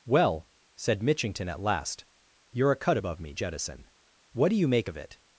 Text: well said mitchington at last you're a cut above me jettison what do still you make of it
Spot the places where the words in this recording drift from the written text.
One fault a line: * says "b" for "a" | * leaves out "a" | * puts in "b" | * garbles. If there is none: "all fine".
* leaves out "still"